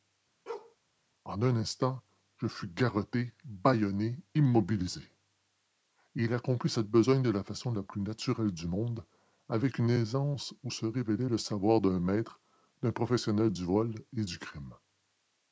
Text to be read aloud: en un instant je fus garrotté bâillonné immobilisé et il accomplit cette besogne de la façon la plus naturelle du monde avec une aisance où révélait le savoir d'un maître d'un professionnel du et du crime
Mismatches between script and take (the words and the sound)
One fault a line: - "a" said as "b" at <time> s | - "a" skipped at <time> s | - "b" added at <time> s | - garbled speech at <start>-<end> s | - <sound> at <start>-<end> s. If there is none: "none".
- bark at 0.5-0.8 s
- "se" added at 10.7 s
- "vol" added at 13.6 s